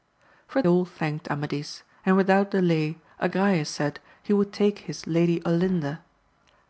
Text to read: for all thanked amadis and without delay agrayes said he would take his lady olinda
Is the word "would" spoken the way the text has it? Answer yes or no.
yes